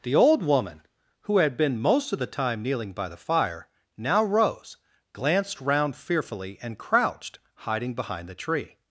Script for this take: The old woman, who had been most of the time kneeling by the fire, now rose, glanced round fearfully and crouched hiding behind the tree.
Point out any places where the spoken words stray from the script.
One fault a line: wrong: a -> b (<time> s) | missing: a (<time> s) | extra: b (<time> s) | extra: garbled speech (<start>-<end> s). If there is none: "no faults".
no faults